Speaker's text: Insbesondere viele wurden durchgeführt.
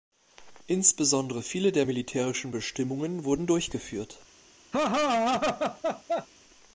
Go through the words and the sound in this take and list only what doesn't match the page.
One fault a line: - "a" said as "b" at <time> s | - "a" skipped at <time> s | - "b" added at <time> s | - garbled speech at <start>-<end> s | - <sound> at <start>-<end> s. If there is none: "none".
- "der militärischen Bestimmungen" added at 1.7 s
- laugh at 4.7-6.3 s